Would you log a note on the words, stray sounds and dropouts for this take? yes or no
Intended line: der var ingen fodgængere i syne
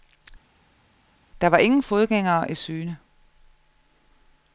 no